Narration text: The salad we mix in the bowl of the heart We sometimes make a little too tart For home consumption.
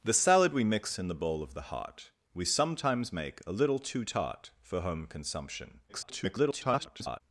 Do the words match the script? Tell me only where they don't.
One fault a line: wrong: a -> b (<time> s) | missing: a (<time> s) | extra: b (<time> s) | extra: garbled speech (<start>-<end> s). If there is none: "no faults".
extra: garbled speech (5.9-7.2 s)